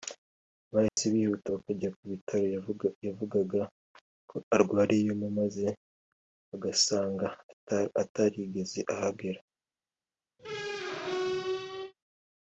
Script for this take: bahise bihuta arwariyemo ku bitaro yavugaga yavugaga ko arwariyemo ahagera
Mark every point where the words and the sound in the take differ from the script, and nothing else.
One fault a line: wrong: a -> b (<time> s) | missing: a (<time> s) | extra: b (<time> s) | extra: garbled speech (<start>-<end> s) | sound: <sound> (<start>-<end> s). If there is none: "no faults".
sound: dropout (0.9-1.0 s)
wrong: arwariyemo -> bakajya (1.5 s)
missing: yavugaga (3.6 s)
extra: maze bagasanga atarigeze (5.4 s)
sound: squeak (10.4-11.9 s)